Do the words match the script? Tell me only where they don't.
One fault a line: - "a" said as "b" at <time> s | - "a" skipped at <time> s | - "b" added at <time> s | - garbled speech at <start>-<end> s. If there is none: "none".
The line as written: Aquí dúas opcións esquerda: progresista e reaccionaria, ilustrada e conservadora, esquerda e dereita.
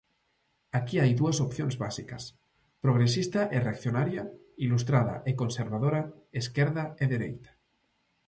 - "hai" added at 1.0 s
- "esquerda" said as "básicas" at 1.8 s